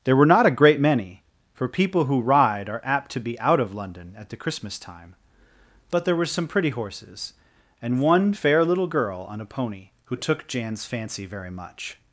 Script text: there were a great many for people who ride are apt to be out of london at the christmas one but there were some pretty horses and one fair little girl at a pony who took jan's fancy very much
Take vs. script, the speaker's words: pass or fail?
fail